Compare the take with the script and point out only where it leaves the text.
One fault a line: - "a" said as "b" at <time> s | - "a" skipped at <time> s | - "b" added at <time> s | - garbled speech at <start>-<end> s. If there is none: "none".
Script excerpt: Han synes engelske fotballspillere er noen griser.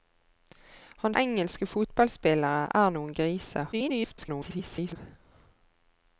- "synes" skipped at 1.1 s
- garbled speech at 3.7-5.0 s